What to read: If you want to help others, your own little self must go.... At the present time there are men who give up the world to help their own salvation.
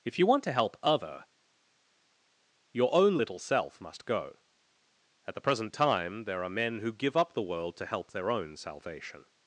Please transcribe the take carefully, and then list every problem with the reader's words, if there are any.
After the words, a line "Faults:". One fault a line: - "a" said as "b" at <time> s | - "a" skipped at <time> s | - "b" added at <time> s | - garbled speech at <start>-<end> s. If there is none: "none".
If you want to help other, your own little self must go.... At the present time there are men who give up the world to help their own salvation.
Faults:
- "others" said as "other" at 0.8 s